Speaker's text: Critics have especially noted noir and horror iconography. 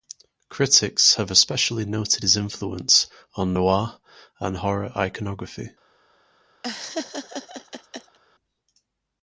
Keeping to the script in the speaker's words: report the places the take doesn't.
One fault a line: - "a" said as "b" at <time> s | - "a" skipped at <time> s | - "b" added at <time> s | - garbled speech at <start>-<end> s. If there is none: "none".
- "his influence on" added at 2.2 s